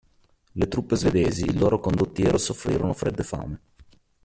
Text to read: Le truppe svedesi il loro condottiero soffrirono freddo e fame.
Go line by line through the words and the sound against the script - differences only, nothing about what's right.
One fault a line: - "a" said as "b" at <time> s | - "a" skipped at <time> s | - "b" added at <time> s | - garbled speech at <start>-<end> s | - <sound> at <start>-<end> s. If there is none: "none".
none